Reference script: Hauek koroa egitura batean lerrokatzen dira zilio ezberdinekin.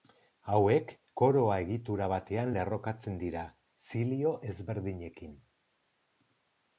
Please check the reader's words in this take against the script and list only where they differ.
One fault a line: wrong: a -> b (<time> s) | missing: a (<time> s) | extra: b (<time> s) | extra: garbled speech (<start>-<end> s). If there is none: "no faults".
no faults